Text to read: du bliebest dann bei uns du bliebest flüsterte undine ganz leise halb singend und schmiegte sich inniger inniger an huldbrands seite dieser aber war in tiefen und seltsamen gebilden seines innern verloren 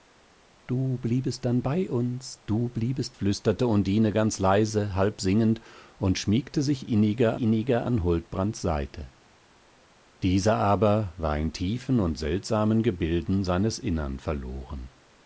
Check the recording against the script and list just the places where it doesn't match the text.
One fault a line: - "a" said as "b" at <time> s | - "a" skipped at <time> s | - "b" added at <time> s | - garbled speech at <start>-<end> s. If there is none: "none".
none